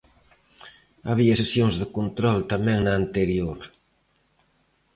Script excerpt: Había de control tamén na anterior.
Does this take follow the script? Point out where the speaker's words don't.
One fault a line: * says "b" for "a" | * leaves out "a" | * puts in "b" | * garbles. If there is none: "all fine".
* puts in "sesións"